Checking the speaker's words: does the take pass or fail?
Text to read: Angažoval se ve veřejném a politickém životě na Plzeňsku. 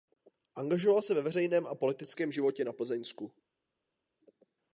pass